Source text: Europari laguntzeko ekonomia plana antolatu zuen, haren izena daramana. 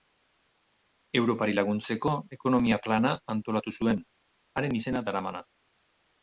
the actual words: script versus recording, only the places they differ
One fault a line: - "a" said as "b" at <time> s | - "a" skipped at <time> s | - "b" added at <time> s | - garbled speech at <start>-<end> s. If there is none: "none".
none